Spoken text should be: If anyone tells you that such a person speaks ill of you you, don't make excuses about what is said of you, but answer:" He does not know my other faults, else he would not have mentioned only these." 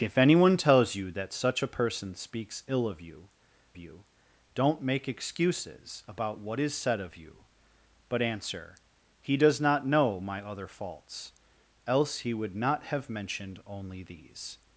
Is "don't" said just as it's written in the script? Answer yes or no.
yes